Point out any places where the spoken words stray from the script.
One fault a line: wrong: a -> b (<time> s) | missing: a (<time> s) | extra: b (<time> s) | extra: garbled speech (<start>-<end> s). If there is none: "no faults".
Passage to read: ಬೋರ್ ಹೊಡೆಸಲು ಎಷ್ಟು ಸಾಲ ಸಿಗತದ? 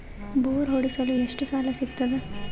no faults